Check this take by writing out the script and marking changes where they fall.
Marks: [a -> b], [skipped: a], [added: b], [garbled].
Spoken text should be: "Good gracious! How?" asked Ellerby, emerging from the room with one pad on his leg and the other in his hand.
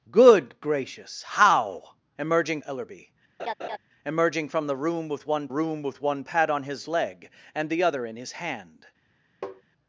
"Good gracious! How?" [asked -> emerging] Ellerby, emerging from the room with one [added: room with one] pad on his leg and the other in his hand.